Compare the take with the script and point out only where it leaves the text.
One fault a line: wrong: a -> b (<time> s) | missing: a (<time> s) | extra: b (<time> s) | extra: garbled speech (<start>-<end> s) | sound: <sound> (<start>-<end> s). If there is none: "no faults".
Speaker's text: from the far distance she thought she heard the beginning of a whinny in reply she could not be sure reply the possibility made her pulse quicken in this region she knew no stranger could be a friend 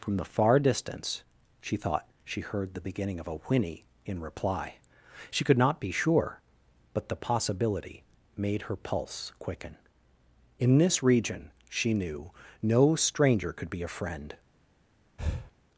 wrong: reply -> but (7.0 s)
sound: breath (15.2-15.5 s)